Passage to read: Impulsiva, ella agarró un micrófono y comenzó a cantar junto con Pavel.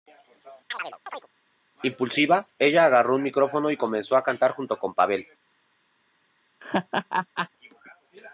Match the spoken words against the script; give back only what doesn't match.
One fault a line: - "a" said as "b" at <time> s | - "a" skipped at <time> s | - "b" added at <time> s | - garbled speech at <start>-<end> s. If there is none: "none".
none